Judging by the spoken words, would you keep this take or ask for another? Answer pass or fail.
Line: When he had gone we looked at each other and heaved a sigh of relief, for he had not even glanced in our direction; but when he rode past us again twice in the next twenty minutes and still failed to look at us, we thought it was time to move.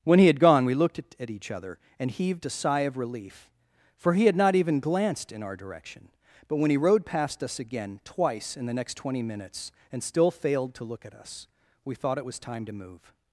pass